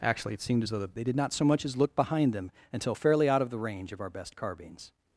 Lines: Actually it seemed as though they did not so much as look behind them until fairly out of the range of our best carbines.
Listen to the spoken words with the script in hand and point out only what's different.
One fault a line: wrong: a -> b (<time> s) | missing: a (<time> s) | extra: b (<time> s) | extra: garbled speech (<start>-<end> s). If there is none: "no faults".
no faults